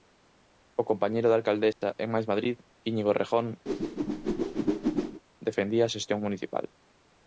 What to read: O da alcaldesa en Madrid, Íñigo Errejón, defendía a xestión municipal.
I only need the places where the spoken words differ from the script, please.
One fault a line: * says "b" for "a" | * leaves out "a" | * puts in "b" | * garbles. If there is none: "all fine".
* puts in "compañeiro"
* puts in "Mais"